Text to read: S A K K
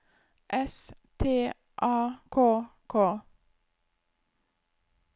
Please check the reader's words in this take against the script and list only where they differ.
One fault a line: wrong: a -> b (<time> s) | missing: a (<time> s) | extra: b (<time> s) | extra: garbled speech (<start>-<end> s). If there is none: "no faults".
extra: T (1.2 s)